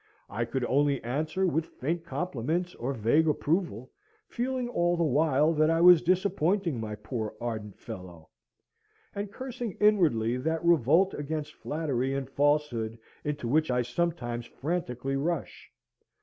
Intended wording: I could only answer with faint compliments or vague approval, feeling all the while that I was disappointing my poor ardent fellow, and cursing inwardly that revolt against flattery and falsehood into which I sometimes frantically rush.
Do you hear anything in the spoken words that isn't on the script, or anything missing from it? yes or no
no